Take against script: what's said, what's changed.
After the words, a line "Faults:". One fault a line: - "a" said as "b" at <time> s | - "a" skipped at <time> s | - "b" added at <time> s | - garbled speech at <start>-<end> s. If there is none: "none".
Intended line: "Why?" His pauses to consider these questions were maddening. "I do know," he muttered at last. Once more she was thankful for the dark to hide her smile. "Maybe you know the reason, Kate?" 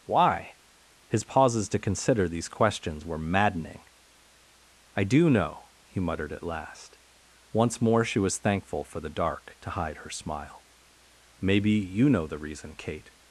"Why?" His pauses to consider these questions were maddening. "I do know," he muttered at last. Once more she was thankful for the dark to hide her smile. "Maybe you know the reason, Kate?"
Faults:
none